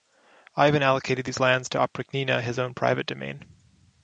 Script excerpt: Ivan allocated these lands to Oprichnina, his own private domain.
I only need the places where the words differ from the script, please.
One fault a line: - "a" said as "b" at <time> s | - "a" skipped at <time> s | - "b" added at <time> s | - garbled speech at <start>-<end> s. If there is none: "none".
none